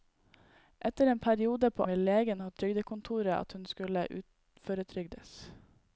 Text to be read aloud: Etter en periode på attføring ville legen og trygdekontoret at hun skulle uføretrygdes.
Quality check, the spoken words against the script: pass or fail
fail